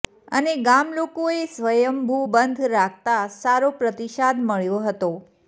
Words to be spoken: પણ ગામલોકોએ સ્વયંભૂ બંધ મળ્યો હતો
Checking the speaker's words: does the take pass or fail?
fail